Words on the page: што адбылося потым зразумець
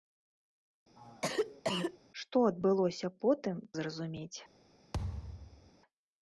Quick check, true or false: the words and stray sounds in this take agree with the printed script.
false